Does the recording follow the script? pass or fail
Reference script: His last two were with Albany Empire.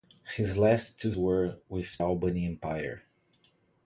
pass